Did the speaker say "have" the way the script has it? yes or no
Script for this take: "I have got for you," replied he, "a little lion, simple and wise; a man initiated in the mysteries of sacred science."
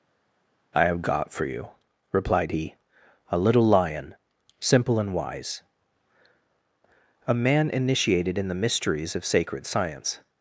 yes